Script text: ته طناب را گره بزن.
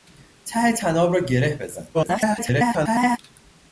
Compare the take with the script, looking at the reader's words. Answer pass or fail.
fail